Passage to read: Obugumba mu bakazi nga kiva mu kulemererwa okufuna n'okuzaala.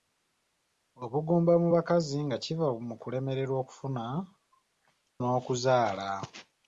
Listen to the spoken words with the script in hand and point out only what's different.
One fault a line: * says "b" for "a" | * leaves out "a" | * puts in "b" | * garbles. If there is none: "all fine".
all fine